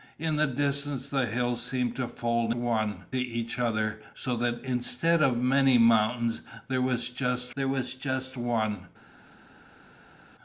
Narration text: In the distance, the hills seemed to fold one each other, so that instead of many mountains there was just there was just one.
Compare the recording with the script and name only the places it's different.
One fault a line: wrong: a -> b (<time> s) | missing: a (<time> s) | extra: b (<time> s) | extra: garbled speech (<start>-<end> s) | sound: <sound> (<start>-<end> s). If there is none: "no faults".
no faults